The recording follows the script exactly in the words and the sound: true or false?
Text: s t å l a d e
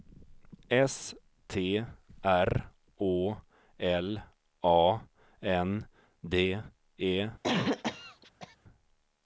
false